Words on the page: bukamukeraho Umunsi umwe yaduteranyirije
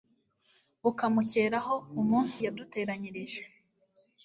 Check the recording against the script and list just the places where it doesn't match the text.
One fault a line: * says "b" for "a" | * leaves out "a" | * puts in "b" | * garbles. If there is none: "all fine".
* leaves out "umwe"